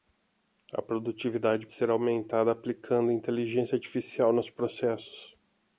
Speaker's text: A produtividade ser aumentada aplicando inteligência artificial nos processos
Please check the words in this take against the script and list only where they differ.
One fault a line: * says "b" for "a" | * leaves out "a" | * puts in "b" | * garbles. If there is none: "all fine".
all fine